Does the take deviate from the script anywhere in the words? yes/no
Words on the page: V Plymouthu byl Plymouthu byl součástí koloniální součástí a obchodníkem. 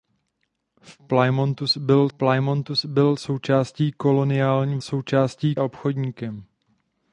no